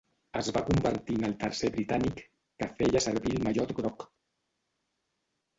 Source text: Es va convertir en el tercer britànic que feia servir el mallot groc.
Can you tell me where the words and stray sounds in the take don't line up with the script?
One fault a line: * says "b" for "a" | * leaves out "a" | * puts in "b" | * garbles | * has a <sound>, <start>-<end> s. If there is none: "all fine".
all fine